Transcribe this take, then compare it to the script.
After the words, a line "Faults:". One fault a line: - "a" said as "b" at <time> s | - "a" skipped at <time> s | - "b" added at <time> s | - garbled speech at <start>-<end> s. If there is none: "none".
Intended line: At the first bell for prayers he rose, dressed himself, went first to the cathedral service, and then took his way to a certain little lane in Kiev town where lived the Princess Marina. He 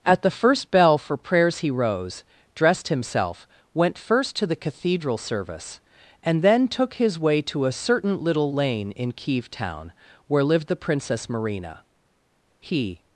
At the first bell for prayers he rose, dressed himself, went first to the cathedral service, and then took his way to a certain little lane in Kiev town where lived the Princess Marina. He
Faults:
none